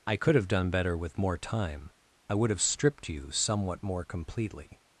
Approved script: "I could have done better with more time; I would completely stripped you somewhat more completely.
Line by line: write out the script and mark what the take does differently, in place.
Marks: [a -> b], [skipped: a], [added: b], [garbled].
"I could have done better with more time; I would [completely -> have] stripped you somewhat more completely.